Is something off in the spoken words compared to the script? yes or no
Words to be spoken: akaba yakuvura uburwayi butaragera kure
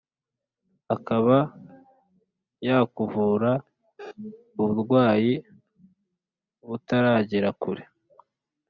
no